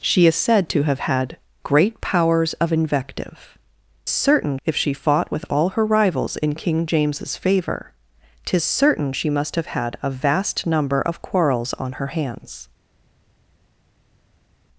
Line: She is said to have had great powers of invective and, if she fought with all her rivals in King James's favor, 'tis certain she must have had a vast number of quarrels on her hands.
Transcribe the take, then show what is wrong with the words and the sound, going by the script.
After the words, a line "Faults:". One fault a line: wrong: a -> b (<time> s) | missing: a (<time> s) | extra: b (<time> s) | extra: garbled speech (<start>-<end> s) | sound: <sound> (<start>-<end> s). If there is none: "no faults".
She is said to have had great powers of invective certain, if she fought with all her rivals in King James's favor, 'tis certain she must have had a vast number of quarrels on her hands.
Faults:
wrong: and -> certain (4.1 s)